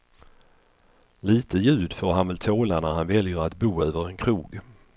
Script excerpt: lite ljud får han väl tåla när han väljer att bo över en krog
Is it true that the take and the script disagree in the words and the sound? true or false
false